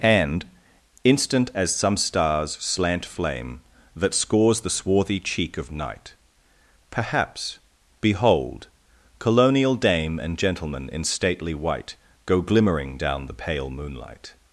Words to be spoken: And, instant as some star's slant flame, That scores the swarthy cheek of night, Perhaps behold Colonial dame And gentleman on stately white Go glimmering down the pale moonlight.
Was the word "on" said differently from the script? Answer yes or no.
yes